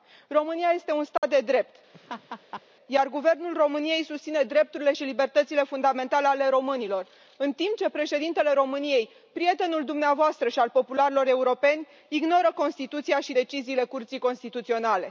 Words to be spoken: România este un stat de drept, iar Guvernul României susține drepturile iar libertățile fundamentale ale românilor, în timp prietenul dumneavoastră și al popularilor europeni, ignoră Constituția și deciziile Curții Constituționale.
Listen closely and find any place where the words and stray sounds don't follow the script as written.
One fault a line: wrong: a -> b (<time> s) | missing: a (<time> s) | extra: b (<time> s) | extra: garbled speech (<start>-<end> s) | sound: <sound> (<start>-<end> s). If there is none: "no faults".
sound: dropout (1.2-1.2 s)
sound: laugh (1.9-2.6 s)
wrong: iar -> și (4.9 s)
extra: ce președintele României (7.8 s)